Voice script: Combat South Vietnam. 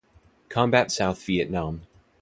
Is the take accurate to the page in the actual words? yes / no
yes